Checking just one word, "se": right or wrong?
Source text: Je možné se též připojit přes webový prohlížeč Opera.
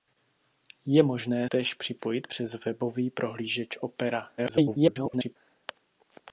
wrong